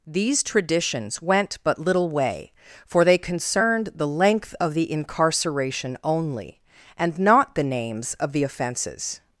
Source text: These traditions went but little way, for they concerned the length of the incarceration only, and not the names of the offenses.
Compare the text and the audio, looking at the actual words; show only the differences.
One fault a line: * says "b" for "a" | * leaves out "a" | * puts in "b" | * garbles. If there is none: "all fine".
all fine